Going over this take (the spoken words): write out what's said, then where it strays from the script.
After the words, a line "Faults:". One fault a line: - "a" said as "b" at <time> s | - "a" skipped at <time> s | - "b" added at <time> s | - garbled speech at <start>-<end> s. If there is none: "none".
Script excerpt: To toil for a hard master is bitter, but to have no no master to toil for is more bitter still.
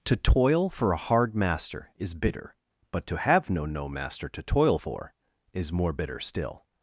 To toil for a hard master is bitter, but to have no no master to toil for is more bitter still.
Faults:
none